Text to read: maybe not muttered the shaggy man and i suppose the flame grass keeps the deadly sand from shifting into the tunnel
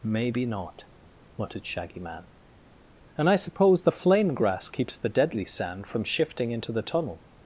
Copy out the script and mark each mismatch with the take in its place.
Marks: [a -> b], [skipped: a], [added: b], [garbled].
maybe not muttered [skipped: the] shaggy man and i suppose the flame grass keeps the deadly sand from shifting into the tunnel